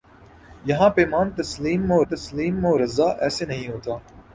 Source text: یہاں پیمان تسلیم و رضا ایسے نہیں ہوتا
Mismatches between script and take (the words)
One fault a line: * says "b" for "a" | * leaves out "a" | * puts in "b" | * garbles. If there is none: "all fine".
* puts in "تسلیم و"